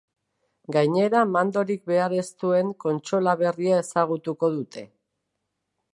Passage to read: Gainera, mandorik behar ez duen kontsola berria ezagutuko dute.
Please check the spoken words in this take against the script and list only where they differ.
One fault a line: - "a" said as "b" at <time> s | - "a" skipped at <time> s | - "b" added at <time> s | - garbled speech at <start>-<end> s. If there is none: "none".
none